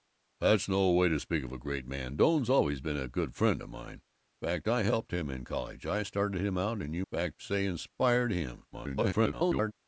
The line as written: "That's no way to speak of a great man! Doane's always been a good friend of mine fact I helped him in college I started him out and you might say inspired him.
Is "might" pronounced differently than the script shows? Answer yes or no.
yes